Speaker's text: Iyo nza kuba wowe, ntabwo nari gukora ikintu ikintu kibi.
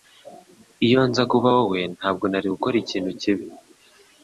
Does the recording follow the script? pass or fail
fail